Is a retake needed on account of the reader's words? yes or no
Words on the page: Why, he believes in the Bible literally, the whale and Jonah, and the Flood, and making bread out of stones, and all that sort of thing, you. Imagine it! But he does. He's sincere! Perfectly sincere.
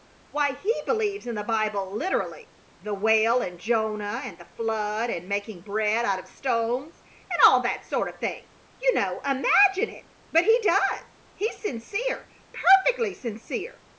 yes